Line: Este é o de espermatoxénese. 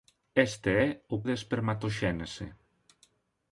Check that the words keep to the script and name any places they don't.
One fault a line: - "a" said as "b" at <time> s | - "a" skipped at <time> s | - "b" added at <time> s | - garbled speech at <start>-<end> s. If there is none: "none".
none